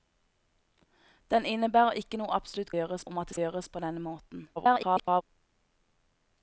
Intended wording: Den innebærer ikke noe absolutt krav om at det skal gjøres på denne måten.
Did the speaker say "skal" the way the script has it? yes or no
no